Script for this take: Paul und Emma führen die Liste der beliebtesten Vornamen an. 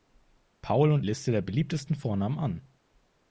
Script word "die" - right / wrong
wrong